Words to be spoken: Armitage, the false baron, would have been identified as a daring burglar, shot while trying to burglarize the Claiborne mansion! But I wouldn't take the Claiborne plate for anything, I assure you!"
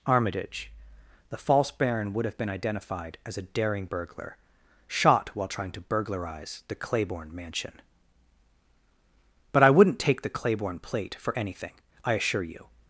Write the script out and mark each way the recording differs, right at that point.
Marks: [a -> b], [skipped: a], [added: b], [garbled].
Armitage, the false baron, would have been identified as a daring burglar, shot while trying to burglarize the Claiborne mansion! But I wouldn't take the Claiborne plate for anything, I assure you!"